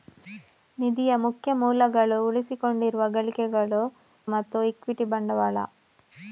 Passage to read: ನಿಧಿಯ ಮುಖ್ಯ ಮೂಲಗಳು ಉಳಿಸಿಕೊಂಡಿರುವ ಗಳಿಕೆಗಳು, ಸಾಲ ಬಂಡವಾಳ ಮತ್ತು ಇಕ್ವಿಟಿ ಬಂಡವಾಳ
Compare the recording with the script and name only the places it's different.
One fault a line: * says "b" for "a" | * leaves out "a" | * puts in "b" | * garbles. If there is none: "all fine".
* leaves out "ಸಾಲ ಬಂಡವಾಳ"